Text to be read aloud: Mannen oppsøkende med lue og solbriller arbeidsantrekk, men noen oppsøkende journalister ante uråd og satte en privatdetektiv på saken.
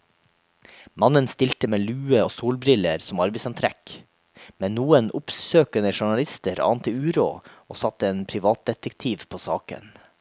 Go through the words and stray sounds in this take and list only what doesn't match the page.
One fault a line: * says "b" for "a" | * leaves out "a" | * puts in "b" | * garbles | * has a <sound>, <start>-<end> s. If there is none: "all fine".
* says "stilte" for "oppsøkende"
* puts in "som"